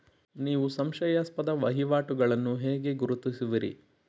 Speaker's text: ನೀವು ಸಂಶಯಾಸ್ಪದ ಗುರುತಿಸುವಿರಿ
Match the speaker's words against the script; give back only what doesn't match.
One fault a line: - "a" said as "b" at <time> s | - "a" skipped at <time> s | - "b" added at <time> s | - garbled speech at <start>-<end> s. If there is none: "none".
- "ವಹಿವಾಟುಗಳನ್ನು ಹೇಗೆ" added at 1.5 s